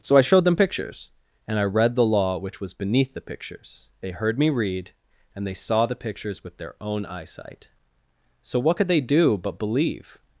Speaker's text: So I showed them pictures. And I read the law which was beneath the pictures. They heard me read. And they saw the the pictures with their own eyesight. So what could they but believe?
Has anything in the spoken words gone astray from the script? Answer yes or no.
yes